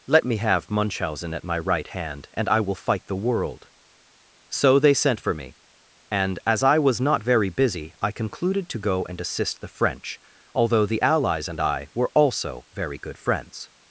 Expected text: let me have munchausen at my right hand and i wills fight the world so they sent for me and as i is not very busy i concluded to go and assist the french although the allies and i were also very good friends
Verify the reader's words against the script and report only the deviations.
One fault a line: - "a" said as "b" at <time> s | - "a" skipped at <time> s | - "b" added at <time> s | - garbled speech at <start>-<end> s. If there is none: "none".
- "wills" said as "will" at 2.6 s
- "is" said as "was" at 6.8 s